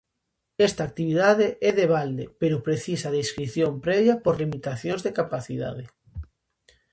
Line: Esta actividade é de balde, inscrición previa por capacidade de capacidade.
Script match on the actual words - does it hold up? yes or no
no